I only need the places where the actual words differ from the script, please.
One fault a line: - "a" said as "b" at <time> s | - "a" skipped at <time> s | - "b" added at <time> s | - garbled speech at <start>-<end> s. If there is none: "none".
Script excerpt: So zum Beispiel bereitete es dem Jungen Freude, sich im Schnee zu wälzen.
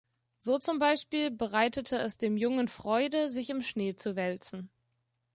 none